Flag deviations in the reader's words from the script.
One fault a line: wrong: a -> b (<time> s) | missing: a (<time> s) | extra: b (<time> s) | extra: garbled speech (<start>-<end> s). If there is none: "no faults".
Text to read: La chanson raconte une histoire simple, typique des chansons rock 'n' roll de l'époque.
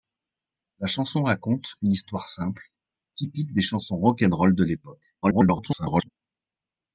extra: garbled speech (5.2-6.1 s)